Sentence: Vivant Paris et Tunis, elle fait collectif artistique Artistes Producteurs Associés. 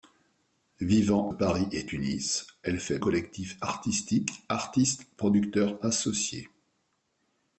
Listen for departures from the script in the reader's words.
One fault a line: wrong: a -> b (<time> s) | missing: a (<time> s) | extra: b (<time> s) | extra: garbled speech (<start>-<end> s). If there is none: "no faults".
no faults